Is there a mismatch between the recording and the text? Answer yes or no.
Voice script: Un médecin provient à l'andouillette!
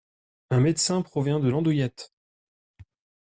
yes